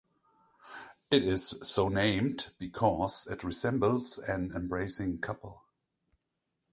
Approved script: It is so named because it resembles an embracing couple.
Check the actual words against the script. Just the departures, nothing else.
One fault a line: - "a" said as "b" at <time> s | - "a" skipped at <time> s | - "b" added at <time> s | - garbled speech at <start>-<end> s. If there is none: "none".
none